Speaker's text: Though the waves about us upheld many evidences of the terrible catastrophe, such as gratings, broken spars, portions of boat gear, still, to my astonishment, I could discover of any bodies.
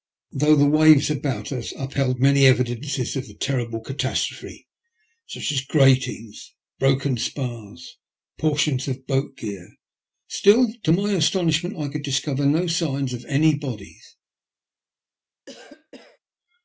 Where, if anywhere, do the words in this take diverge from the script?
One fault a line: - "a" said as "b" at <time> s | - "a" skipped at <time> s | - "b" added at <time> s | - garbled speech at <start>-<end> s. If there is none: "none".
- "no signs" added at 12.4 s